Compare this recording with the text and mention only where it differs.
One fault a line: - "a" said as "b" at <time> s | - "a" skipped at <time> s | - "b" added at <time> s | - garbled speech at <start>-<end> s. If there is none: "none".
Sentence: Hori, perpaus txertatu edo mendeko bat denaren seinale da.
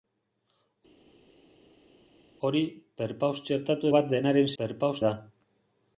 - "edo mendeko" skipped at 3.9 s
- "seinale" said as "perpaus" at 4.6 s